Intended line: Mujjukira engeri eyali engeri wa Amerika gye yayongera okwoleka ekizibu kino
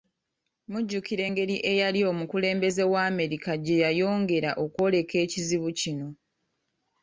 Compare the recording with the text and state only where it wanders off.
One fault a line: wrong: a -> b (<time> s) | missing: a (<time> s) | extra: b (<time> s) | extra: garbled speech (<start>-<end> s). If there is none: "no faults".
wrong: engeri -> omukulembeze (2.1 s)